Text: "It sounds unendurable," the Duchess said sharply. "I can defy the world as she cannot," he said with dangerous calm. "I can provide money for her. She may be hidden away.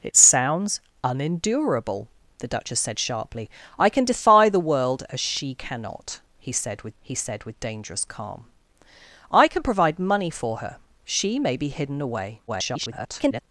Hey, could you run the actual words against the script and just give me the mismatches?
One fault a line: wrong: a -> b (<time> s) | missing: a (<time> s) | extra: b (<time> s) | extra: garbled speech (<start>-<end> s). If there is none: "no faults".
extra: he said with (7.0 s)
extra: garbled speech (12.5-13.4 s)